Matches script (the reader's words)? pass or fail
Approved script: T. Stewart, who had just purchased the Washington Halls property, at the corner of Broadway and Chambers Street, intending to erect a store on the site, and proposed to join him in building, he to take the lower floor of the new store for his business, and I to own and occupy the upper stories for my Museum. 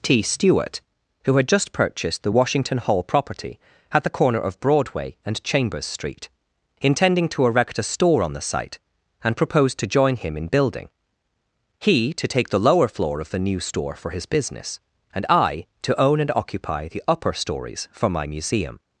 fail